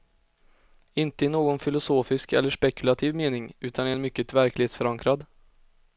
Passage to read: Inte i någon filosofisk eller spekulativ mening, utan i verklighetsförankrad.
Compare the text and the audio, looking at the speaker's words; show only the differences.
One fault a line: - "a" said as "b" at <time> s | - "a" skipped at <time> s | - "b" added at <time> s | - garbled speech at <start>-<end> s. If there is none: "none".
- "en mycket" added at 3.9 s